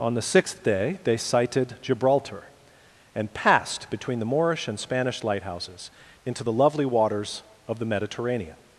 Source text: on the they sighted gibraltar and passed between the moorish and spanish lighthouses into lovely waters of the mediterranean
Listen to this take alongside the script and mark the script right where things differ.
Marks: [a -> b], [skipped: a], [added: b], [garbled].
on the [added: sixth day] they sighted gibraltar and passed between the moorish and spanish lighthouses into [added: the] lovely waters of the mediterranean